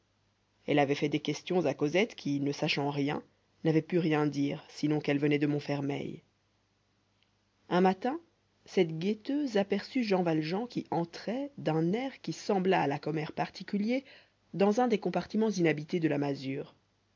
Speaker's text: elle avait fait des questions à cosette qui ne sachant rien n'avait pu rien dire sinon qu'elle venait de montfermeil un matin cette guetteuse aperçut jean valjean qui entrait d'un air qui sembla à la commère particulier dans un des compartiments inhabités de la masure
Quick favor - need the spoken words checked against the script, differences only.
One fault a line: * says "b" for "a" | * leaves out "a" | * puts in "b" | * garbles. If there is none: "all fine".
all fine